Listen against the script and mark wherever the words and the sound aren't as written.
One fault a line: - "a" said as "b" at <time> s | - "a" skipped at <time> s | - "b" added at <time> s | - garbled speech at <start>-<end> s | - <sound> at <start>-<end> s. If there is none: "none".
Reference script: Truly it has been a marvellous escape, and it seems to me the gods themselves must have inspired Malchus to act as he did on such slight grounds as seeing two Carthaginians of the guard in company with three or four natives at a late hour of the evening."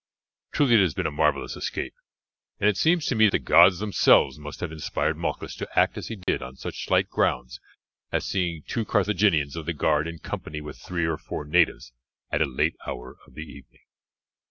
- dropout at 6.2-6.3 s